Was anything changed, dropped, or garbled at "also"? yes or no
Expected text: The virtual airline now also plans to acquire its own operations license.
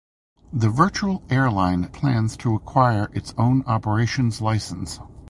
yes